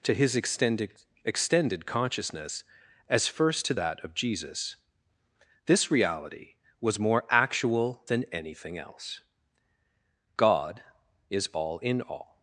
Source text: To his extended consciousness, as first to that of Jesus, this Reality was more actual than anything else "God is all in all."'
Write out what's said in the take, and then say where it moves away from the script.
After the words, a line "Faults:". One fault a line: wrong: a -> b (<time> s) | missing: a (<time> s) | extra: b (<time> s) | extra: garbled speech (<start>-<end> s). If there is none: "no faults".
To his extended extended consciousness, as first to that of Jesus, this Reality was more actual than anything else "God is all in all."'
Faults:
extra: extended (1.2 s)